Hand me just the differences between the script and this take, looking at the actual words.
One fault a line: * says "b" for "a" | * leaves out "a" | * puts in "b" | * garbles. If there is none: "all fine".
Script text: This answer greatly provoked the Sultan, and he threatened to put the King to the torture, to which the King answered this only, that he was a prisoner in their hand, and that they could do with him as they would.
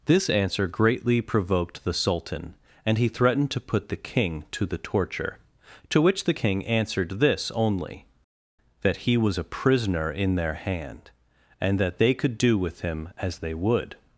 all fine